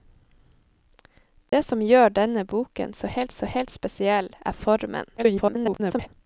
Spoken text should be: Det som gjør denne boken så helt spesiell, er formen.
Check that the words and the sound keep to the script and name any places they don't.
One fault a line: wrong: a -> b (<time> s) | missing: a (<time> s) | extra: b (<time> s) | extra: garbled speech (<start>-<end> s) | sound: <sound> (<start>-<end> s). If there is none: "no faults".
sound: dropout (1.5-1.5 s)
extra: så helt (3.3 s)
extra: garbled speech (5.2-6.1 s)